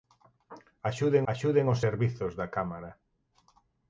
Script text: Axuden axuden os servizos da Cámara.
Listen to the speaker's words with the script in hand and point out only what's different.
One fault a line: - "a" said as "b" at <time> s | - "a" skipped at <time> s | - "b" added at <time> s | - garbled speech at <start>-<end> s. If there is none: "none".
none